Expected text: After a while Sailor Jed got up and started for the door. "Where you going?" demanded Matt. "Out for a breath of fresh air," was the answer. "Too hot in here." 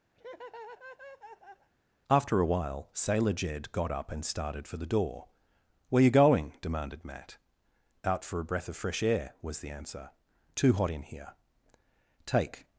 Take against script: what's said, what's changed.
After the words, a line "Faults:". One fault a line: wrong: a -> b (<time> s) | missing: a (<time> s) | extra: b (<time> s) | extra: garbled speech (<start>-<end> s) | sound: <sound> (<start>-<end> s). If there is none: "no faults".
After a while Sailor Jed got up and started for the door. "Where you going?" demanded Matt. "Out for a breath of fresh air," was the answer. "Too hot in here." "Take
Faults:
sound: laugh (0.2-1.7 s)
extra: Take (12.2 s)